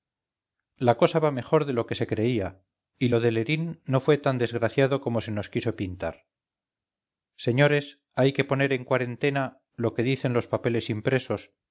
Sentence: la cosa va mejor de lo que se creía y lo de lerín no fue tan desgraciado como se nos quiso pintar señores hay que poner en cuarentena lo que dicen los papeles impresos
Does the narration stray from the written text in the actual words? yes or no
no